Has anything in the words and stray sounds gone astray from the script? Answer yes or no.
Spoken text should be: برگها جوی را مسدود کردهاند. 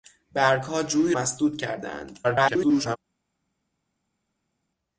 yes